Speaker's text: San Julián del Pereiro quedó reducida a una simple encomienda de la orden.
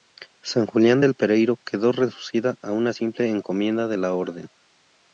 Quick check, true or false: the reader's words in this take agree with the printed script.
true